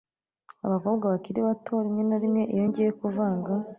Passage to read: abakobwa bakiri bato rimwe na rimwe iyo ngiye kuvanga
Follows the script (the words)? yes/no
yes